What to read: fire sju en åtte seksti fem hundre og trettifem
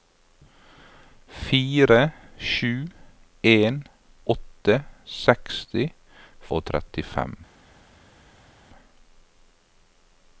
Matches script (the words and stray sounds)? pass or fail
fail